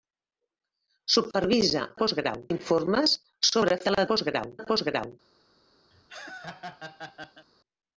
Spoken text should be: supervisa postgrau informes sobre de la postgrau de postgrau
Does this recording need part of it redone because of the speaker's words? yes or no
no